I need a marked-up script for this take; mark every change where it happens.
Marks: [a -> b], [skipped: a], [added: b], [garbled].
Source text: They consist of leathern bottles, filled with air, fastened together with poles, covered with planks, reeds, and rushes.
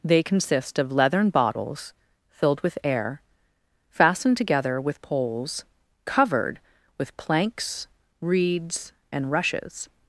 They consist of leathern bottles, filled with air, fastened together with poles, covered with planks, reeds, and rushes.